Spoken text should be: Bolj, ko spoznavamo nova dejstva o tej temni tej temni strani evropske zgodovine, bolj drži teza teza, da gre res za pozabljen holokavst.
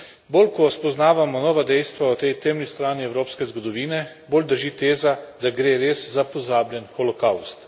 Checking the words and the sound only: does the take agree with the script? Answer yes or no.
no